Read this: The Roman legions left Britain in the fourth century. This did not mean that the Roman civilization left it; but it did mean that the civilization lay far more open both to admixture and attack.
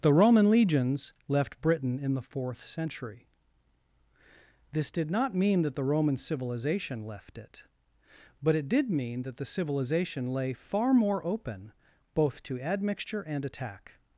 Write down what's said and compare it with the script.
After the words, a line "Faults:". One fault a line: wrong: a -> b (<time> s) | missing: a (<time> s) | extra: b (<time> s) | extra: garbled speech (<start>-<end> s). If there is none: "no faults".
The Roman legions left Britain in the fourth century. This did not mean that the Roman civilization left it; but it did mean that the civilization lay far more open both to admixture and attack.
Faults:
no faults